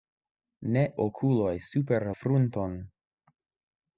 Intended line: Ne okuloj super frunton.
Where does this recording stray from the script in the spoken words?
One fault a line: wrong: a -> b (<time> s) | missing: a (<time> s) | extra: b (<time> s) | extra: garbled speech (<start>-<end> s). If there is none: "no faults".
no faults